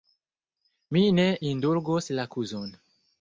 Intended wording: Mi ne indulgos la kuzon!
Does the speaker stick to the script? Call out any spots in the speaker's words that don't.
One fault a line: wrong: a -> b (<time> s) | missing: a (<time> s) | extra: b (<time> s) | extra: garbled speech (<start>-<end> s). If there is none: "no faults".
no faults